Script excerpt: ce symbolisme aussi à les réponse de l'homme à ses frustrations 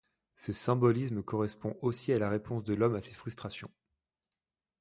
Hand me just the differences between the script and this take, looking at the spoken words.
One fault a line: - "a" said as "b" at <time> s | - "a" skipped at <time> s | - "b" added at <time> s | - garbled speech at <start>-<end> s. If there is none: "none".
- "correspond" added at 1.2 s
- "les" said as "la" at 2.2 s